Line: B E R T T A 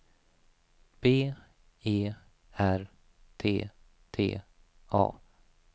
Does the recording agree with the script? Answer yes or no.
yes